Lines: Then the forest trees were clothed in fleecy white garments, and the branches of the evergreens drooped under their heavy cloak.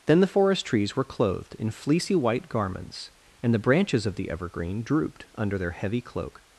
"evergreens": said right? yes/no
no